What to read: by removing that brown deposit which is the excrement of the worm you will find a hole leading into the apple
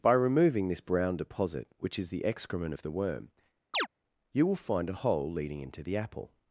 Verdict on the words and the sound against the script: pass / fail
fail